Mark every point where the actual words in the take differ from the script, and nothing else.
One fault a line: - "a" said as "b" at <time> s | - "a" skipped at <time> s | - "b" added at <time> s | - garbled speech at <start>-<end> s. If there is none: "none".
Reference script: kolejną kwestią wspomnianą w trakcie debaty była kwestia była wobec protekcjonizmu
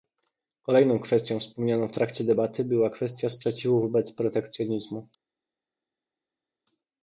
- "była" said as "sprzeciwu" at 3.3 s